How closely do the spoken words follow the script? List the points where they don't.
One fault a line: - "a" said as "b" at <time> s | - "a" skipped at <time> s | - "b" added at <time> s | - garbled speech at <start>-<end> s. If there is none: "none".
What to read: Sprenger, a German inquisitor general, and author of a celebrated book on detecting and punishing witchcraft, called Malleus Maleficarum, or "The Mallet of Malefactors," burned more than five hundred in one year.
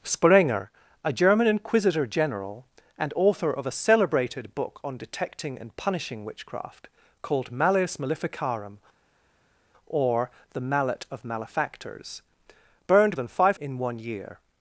- "more" skipped at 13.2 s
- "hundred" skipped at 13.6 s